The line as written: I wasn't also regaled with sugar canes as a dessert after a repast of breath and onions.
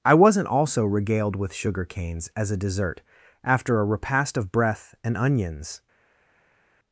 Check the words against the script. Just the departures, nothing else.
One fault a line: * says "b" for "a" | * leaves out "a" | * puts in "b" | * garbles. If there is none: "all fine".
all fine